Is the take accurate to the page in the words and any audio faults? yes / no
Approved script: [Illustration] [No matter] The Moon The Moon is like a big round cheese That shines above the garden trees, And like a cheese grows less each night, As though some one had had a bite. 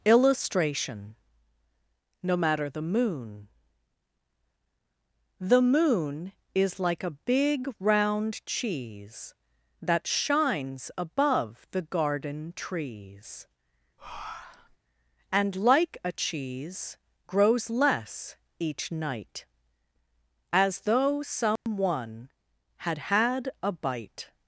no